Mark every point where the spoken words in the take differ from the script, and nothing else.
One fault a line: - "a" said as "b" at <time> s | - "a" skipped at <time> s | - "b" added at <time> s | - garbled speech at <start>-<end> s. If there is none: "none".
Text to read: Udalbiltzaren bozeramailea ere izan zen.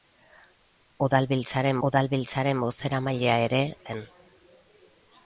- "udalbiltzaren" added at 1.9 s
- "izan" skipped at 3.6 s